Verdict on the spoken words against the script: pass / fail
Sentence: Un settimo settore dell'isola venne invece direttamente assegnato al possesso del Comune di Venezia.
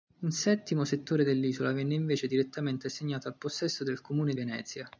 fail